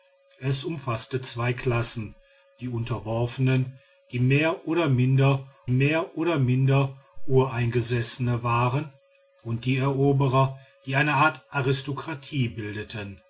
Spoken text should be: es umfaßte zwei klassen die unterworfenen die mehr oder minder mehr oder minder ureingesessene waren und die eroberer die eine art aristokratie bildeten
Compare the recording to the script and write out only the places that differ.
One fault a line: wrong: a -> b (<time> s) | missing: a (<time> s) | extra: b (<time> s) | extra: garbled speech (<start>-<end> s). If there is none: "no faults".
no faults